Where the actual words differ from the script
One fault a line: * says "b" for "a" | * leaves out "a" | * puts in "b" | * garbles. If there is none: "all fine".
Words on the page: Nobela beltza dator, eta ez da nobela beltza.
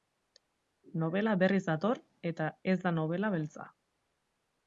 * says "berriz" for "beltza"